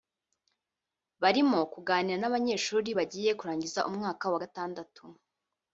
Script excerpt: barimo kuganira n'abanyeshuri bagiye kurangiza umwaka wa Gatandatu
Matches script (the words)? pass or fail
pass